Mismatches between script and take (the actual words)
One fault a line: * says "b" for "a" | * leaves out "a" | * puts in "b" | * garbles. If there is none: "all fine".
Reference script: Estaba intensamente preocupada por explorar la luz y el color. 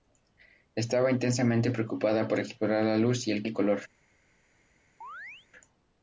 * puts in "el"